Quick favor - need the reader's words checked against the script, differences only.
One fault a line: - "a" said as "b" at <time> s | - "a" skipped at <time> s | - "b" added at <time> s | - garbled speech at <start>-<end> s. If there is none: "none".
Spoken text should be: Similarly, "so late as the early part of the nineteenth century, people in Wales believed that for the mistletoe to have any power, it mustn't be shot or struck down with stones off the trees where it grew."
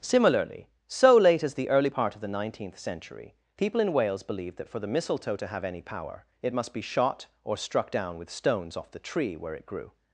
- "mustn't" said as "must" at 6.5 s
- "trees" said as "tree" at 9.0 s